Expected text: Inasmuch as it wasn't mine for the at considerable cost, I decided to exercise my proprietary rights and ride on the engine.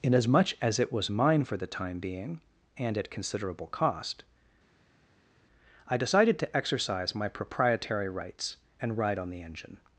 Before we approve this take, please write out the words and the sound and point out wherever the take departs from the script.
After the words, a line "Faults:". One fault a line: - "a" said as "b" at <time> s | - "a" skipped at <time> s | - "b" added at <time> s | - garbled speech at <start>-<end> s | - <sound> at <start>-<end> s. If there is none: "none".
Inasmuch as it was mine for the time being, and at considerable cost, I decided to exercise my proprietary rights and ride on the engine.
Faults:
- "wasn't" said as "was" at 0.9 s
- "time being and" added at 1.7 s